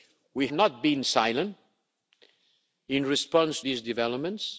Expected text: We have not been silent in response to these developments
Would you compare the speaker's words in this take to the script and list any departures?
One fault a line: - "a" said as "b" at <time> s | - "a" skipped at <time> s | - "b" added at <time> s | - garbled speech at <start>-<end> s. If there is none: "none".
- "have" skipped at 0.5 s
- "to" skipped at 3.6 s